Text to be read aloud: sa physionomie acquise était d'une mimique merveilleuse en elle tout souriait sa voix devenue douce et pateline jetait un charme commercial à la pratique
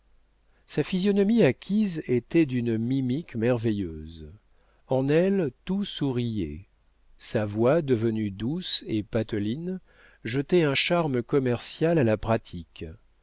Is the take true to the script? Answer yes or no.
yes